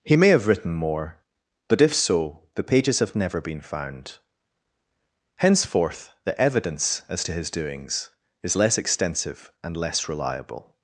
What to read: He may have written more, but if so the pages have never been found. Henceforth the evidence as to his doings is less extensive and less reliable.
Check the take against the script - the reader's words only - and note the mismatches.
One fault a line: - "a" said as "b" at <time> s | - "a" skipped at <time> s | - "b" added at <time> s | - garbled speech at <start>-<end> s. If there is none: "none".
none